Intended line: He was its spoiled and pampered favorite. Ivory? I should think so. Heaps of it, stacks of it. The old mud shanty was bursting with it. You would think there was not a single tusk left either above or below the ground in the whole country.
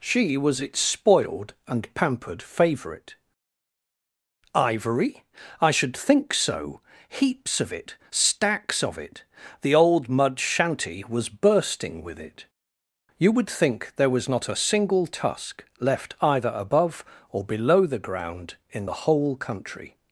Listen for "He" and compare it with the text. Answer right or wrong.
wrong